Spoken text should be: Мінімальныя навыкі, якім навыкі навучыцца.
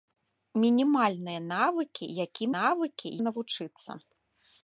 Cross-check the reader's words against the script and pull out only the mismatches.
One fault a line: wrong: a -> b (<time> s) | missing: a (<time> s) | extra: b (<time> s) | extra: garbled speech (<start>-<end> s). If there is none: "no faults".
no faults